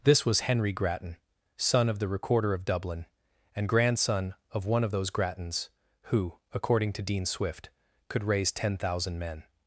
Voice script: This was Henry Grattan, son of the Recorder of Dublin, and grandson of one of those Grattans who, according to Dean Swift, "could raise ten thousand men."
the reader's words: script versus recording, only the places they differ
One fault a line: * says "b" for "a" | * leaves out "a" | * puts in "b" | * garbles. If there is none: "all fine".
all fine